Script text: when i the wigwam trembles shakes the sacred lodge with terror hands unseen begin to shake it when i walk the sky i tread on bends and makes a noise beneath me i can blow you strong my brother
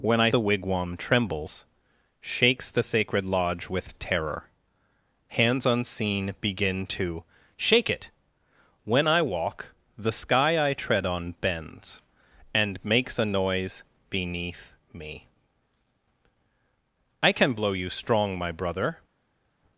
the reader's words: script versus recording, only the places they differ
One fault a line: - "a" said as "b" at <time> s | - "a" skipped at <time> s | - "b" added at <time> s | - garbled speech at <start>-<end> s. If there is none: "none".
none